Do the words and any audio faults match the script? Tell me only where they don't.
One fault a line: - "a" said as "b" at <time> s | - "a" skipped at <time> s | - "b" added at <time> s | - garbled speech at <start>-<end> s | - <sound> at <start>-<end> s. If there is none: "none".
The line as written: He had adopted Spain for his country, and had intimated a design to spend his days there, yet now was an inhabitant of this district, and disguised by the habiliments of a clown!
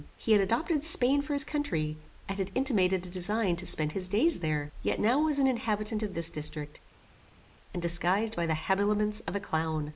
none